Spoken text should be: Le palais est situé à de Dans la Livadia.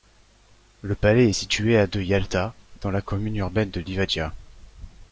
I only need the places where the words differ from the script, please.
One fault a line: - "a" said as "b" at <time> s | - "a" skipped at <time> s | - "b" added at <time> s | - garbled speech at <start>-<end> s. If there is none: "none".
- "Yalta" added at 2.0 s
- "commune urbaine de" added at 3.0 s